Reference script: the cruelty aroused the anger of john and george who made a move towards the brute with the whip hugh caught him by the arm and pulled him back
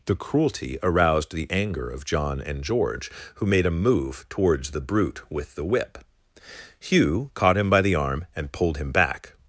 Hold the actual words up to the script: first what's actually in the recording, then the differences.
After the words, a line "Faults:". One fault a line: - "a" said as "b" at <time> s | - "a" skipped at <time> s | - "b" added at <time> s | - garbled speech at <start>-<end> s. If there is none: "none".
the cruelty aroused the anger of john and george who made a move towards the brute with the whip hugh caught him by the arm and pulled him back
Faults:
none